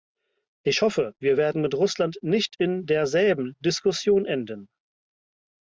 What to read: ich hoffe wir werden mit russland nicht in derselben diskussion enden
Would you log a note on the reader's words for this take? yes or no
no